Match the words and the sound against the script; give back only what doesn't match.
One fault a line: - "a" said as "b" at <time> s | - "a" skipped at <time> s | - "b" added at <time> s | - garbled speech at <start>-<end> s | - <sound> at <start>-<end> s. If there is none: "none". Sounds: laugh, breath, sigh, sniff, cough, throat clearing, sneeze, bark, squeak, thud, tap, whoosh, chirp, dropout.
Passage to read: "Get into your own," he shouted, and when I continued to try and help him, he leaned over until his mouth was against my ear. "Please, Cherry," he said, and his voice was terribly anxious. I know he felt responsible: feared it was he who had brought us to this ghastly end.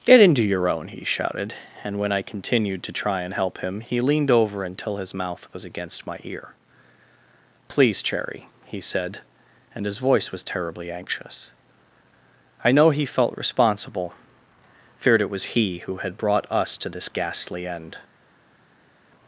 none